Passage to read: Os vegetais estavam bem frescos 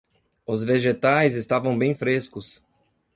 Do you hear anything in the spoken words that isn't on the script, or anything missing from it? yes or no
no